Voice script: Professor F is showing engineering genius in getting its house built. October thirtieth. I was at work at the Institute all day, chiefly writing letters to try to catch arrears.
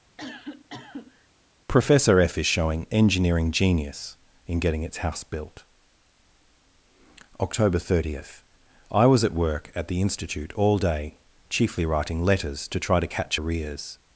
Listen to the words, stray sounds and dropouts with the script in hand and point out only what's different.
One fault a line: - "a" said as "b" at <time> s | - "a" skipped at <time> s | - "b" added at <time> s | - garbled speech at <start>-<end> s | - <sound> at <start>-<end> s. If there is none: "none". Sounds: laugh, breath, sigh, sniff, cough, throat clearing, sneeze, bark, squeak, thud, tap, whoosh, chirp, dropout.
- cough at 0.2-1.3 s